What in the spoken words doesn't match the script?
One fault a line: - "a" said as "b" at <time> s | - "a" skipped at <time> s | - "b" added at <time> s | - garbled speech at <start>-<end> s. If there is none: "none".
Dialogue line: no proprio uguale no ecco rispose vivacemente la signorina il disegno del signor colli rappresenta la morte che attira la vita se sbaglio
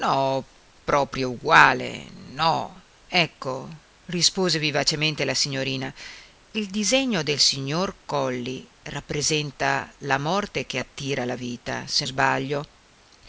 none